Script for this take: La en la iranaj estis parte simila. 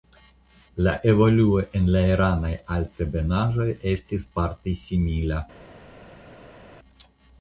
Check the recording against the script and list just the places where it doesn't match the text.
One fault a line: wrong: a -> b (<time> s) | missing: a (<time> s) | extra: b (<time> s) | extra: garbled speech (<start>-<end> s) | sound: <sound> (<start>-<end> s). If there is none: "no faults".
extra: evoluo (1.1 s)
extra: altebenaĵoj (2.8 s)